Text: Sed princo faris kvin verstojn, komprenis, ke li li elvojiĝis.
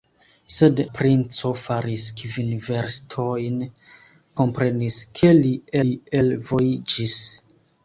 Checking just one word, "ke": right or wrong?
right